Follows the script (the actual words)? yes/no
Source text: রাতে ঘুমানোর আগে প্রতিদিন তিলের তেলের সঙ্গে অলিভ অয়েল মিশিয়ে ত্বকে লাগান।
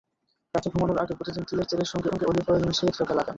no